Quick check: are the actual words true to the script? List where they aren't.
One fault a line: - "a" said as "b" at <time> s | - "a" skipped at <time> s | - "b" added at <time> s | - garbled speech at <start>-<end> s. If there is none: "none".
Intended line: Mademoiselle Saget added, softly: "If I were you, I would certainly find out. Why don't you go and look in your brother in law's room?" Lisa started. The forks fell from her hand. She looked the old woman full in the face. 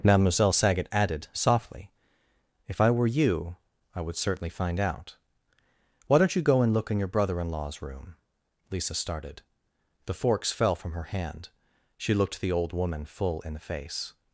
none